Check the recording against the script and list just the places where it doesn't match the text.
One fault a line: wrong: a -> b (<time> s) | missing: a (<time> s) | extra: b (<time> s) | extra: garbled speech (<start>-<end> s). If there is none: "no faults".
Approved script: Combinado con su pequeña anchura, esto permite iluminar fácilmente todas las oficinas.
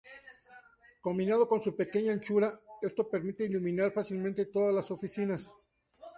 no faults